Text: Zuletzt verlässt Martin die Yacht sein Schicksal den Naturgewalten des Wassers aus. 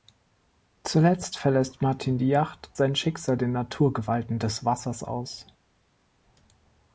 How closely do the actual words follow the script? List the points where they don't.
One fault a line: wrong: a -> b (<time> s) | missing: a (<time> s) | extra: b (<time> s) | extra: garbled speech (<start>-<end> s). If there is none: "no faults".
no faults